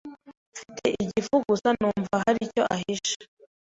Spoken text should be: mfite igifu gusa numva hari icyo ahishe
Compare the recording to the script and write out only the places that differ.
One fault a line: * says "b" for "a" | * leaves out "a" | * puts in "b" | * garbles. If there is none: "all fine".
all fine